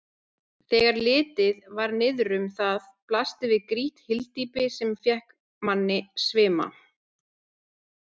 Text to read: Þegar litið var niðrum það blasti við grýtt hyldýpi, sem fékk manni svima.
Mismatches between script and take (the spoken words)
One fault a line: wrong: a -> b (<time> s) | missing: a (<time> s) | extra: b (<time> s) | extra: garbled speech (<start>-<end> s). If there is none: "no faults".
no faults